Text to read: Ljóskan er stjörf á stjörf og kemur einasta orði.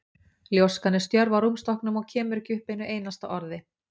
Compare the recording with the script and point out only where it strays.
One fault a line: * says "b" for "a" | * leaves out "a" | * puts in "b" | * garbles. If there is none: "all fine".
* says "rúmstokknum" for "stjörf"
* puts in "ekki upp einu"